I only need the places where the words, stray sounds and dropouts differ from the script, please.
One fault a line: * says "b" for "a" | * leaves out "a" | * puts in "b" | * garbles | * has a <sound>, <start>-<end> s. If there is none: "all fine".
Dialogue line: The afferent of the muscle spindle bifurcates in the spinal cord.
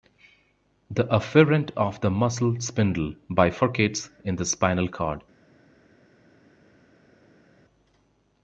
all fine